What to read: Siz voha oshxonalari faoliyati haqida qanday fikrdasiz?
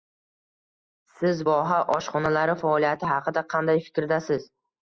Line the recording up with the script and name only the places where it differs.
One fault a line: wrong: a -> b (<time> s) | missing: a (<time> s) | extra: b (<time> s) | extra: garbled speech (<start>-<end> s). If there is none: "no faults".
no faults